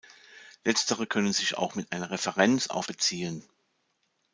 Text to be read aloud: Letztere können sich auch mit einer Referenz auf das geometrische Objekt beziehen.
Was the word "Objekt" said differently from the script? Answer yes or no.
yes